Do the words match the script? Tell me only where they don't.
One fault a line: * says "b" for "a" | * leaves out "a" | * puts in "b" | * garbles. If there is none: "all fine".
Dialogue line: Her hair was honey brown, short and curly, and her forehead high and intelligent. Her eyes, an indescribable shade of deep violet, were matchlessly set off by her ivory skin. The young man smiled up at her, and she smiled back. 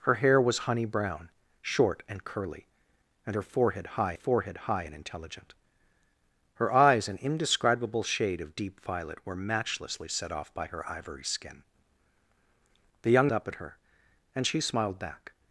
* puts in "forehead high"
* leaves out "man smiled"